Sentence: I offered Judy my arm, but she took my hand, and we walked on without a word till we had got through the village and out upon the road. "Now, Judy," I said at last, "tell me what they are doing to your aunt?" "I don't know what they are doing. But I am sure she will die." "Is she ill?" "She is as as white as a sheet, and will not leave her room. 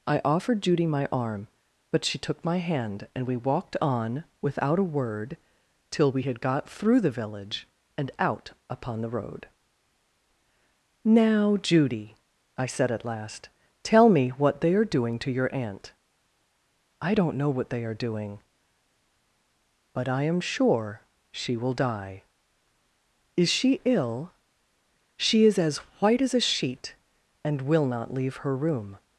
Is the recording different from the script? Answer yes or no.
yes